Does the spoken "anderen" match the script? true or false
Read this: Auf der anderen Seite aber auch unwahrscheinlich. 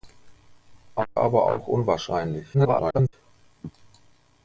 false